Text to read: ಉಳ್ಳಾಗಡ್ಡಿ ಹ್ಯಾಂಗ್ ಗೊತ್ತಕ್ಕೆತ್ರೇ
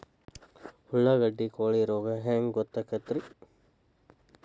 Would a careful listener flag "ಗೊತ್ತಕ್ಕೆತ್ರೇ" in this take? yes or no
no